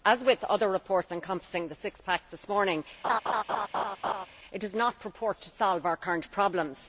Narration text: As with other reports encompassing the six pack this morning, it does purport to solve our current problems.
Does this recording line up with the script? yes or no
no